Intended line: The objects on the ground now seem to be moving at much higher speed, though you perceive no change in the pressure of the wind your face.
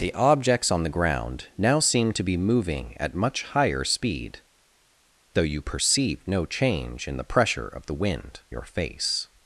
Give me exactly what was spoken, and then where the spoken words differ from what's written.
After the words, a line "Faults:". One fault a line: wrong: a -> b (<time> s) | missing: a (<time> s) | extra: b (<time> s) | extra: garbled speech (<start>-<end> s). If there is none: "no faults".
The objects on the ground now seem to be moving at much higher speed, though you perceive no change in the pressure of the wind your face.
Faults:
no faults